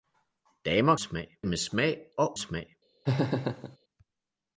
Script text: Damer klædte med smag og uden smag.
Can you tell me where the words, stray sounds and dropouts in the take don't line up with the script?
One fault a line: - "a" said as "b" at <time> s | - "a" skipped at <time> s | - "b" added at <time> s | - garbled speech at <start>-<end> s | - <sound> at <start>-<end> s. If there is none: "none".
- "klædte" said as "smag" at 1.0 s
- "uden" skipped at 2.4 s
- laugh at 3.1-3.8 s